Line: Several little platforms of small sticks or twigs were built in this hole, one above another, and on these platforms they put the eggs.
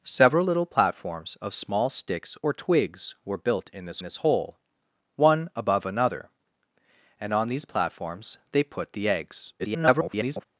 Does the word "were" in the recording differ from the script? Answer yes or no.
no